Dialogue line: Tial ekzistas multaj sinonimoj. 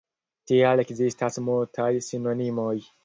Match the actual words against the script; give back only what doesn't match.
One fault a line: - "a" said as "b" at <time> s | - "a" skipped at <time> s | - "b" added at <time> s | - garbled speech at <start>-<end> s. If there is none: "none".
none